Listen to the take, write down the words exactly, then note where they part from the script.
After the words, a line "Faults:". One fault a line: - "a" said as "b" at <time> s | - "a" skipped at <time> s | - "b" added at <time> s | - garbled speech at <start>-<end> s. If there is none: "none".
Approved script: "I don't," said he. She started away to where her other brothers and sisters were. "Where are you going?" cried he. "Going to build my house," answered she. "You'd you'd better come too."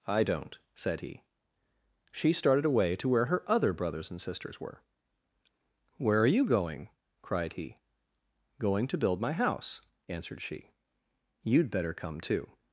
"I don't," said he. She started away to where her other brothers and sisters were. "Where are you going?" cried he. "Going to build my house," answered she. "You'd better come too."
Faults:
- "you'd" skipped at 11.7 s